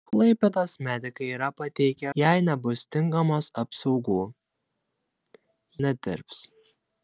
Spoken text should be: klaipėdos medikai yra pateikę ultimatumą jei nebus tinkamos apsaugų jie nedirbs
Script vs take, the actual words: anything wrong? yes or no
yes